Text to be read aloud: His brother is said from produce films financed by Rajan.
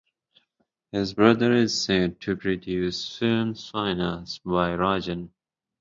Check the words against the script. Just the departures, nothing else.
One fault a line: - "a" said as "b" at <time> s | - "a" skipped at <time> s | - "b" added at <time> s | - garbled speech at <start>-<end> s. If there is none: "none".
- "from" said as "to" at 2.2 s